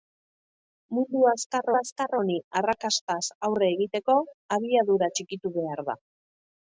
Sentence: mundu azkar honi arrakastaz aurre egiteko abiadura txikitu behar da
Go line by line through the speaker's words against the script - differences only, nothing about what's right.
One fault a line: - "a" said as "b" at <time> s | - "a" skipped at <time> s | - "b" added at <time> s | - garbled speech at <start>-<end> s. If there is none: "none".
- "azkar" added at 1.8 s